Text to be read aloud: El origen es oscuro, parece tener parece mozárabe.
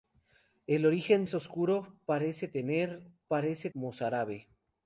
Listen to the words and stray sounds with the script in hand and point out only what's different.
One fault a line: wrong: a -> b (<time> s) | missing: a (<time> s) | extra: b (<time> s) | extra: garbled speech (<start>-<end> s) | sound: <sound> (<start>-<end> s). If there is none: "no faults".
no faults